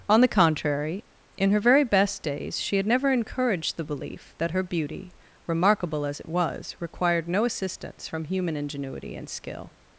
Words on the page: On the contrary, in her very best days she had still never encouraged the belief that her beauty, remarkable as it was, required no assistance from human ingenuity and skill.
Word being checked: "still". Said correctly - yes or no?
no